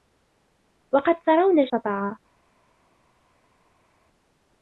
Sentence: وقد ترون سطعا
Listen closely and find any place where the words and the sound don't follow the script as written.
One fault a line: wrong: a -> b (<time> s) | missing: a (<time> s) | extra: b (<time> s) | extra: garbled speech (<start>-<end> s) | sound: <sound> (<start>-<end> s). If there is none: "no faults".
no faults